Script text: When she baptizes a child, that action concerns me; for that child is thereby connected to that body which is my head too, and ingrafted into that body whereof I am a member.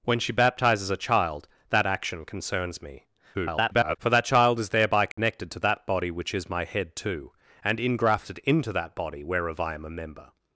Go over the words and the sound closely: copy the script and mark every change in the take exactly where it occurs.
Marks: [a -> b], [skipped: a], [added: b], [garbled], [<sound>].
When she baptizes a child, that action concerns me; [garbled] for that child is thereby connected [dropout] to that body which is my head too, and ingrafted into that body whereof I am a member.